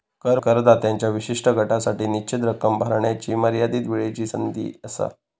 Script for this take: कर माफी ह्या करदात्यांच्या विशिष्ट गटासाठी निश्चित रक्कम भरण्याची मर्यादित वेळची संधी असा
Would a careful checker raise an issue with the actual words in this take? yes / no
yes